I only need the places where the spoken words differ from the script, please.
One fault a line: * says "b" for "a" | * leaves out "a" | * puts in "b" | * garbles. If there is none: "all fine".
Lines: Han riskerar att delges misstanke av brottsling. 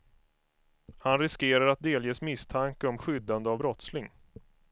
* puts in "om skyddande"